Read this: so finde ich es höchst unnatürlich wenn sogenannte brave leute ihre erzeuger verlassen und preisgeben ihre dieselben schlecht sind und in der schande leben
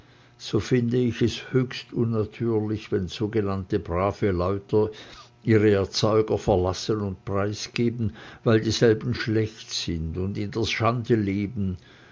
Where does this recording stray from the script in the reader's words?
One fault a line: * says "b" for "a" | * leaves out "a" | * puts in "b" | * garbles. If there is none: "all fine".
* says "weil" for "ihre"